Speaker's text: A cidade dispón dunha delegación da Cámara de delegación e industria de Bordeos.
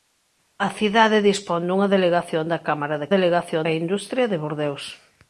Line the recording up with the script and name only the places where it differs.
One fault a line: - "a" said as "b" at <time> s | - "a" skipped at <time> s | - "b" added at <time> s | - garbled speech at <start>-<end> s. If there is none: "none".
none